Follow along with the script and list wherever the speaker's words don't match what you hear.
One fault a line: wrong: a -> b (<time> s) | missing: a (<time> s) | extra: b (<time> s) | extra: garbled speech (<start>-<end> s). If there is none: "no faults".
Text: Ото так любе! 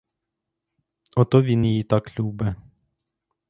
extra: він її (1.4 s)